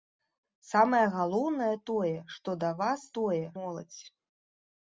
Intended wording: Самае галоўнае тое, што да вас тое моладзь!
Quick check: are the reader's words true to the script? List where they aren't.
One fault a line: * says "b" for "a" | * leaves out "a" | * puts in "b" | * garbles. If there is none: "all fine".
all fine